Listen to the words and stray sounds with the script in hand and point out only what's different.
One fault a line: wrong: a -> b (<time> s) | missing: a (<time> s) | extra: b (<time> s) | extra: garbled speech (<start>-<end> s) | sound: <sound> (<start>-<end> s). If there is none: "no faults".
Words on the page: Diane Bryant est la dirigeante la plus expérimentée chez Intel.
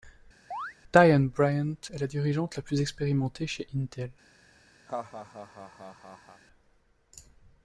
sound: chirp (0.5-0.7 s)
sound: laugh (4.9-6.4 s)